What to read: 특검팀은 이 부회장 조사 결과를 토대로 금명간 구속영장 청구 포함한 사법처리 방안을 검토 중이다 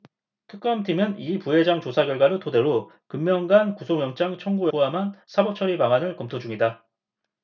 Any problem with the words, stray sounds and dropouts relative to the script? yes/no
no